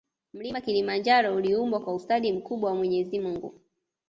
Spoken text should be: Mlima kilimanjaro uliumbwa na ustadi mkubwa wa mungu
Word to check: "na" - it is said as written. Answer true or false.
false